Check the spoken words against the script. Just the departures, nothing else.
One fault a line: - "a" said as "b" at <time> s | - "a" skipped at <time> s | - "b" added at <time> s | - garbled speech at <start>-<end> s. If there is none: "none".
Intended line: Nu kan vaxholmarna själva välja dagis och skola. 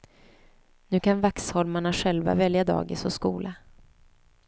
none